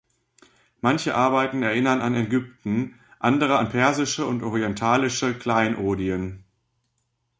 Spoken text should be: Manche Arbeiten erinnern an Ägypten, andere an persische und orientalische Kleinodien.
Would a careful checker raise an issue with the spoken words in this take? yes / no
no